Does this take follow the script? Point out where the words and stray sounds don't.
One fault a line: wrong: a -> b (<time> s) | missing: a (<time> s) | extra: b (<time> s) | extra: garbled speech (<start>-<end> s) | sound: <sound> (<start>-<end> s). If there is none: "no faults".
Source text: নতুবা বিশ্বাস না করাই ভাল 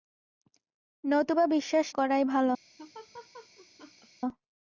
missing: না (1.9 s)
sound: laugh (2.8-4.1 s)